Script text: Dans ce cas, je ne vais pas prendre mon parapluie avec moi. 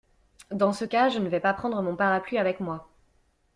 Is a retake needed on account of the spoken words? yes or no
no